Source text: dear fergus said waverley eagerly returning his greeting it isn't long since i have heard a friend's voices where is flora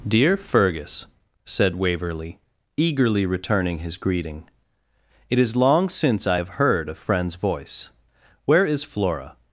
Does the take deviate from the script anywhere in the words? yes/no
yes